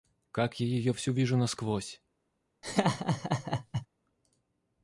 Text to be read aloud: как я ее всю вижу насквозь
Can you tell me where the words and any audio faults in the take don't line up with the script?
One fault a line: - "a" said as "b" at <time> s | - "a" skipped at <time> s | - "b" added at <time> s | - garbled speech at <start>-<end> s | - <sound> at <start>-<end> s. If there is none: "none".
- laugh at 2.6-3.9 s